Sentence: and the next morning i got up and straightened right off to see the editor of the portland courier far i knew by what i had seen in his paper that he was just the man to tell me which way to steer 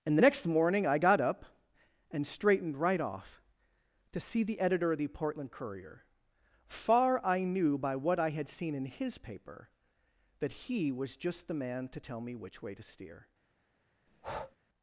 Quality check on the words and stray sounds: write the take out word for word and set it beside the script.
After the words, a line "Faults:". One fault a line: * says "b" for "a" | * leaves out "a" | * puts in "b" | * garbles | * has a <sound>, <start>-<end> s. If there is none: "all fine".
and the next morning i got up and straightened right off to see the editor of the portland courier far i knew by what i had seen in his paper that he was just the man to tell me which way to steer
Faults:
* has a breath, 14.1-14.6 s